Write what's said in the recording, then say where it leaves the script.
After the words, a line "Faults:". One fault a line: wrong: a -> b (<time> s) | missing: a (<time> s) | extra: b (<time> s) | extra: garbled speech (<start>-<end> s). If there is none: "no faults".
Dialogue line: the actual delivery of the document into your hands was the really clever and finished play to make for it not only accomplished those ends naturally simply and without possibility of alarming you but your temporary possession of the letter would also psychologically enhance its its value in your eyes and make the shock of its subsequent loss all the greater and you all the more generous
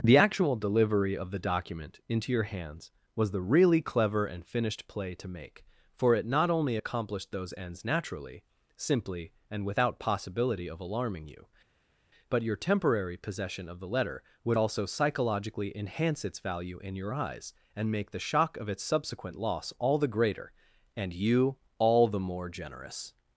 the actual delivery of the document into your hands was the really clever and finished play to make for it not only accomplished those ends naturally simply and without possibility of alarming you but your temporary possession of the letter would also psychologically enhance its value in your eyes and make the shock of its subsequent loss all the greater and you all the more generous
Faults:
missing: its (16.4 s)